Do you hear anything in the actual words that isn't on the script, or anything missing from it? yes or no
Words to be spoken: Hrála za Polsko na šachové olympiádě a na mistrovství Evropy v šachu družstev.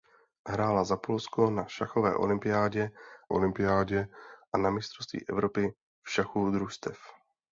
yes